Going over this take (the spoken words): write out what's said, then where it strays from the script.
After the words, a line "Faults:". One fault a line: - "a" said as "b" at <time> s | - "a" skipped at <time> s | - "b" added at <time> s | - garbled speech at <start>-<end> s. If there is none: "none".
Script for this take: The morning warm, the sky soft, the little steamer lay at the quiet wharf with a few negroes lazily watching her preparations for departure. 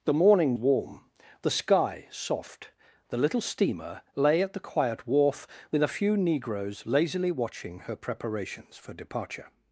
The morning warm, the sky soft, the little steamer lay at the quiet wharf with a few negroes lazily watching her preparations for departure.
Faults:
none